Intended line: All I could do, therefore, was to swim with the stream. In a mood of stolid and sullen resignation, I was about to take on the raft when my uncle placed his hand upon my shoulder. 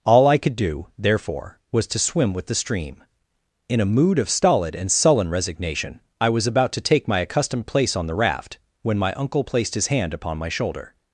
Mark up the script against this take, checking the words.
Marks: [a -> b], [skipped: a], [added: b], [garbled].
All I could do, therefore, was to swim with the stream. In a mood of stolid and sullen resignation, I was about to take [added: my accustomed place] on the raft when my uncle placed his hand upon my shoulder.